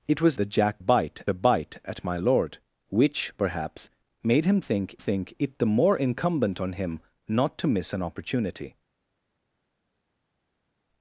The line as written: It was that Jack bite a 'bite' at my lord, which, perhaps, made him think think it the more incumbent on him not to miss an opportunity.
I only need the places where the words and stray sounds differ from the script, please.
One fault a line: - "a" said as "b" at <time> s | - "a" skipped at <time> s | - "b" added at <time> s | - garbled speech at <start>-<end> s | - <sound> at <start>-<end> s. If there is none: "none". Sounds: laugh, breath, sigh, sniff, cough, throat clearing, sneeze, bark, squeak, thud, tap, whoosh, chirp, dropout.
none